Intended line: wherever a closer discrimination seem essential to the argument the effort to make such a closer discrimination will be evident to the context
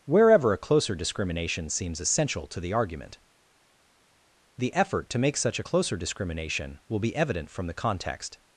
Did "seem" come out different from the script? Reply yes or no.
yes